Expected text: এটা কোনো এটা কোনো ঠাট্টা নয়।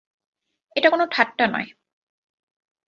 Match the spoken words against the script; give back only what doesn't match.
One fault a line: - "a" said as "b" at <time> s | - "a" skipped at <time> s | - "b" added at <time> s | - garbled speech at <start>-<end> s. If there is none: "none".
- "এটা কোনো" skipped at 1.0 s